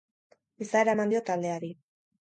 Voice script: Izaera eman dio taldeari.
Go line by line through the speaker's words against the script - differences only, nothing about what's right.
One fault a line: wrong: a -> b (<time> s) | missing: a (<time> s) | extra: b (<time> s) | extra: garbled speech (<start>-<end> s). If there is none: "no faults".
no faults